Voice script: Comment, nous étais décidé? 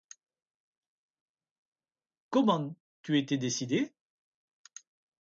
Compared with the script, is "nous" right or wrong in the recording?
wrong